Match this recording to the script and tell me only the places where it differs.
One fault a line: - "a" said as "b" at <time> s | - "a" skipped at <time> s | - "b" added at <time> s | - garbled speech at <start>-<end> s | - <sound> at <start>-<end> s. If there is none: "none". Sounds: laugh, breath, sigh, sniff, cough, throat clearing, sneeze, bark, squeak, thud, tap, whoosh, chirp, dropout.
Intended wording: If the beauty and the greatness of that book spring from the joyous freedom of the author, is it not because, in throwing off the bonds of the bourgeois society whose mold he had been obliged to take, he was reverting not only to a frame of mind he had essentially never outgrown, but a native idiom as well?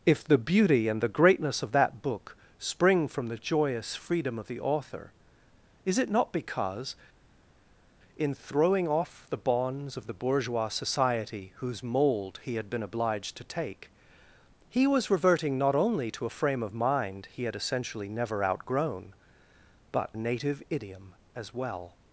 none